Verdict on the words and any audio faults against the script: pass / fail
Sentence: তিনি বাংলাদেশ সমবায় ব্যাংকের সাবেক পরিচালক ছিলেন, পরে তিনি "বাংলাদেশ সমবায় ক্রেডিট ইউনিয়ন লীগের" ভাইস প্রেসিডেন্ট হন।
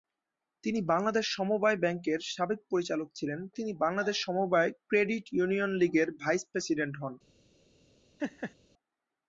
fail